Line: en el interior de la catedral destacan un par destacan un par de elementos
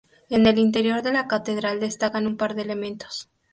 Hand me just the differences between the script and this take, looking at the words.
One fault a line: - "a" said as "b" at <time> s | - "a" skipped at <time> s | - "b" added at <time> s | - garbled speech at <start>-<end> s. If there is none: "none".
- "destacan un par" skipped at 2.5 s